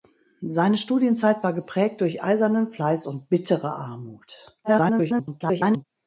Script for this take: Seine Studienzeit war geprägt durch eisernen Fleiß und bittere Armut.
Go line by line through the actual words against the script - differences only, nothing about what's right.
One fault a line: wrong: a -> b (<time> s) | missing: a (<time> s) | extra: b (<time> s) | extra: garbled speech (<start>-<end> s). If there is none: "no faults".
extra: garbled speech (4.6-5.8 s)